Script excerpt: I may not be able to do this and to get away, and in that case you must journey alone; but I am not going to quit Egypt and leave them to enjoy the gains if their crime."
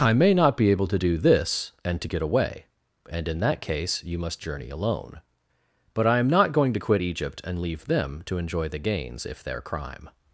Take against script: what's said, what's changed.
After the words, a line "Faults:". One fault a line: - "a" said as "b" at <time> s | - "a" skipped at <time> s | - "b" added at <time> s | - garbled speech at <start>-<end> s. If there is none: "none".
I may not be able to do this and to get away, and in that case you must journey alone; but I am not going to quit Egypt and leave them to enjoy the gains if their crime."
Faults:
none